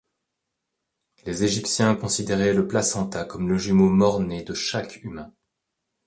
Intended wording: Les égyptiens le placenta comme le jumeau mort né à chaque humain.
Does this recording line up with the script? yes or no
no